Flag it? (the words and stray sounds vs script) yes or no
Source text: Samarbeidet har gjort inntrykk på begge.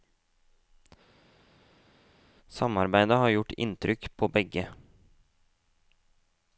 no